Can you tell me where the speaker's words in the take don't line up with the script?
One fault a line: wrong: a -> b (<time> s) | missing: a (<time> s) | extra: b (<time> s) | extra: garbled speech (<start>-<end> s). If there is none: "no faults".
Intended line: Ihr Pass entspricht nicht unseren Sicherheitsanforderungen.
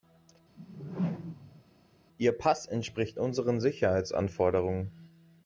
missing: nicht (3.2 s)